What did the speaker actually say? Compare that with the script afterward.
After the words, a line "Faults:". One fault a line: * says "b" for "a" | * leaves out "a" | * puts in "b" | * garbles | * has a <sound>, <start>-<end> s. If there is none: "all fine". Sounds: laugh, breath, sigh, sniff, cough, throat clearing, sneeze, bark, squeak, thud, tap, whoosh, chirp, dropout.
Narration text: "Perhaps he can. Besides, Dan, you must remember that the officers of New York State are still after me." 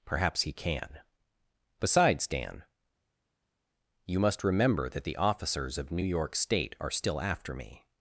"Perhaps he can. Besides, Dan, you must remember that the officers of New York State are still after me."
Faults:
all fine